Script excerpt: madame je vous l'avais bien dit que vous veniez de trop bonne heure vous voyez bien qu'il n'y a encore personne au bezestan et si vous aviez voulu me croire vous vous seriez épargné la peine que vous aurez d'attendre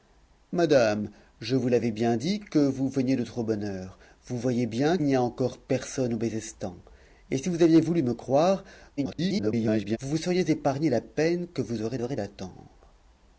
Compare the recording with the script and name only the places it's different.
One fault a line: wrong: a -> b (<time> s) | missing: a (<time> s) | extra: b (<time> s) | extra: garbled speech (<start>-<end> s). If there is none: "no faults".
missing: qu'il (5.0 s)
extra: garbled speech (9.0-10.0 s)
extra: aurez (12.0 s)